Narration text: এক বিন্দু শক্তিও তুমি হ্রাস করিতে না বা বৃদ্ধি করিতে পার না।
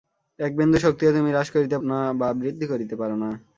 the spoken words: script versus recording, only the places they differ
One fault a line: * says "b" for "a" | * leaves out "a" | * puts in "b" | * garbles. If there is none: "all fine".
all fine